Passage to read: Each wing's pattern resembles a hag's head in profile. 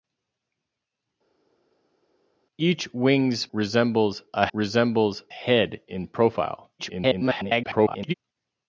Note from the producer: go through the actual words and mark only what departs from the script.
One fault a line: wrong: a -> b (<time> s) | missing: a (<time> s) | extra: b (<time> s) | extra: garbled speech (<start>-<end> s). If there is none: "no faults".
missing: pattern (3.5 s)
wrong: hag's -> resembles (4.5 s)
extra: garbled speech (6.8-8.1 s)